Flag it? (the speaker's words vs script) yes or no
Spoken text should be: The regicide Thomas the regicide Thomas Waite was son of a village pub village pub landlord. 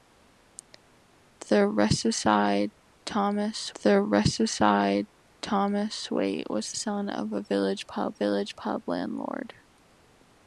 no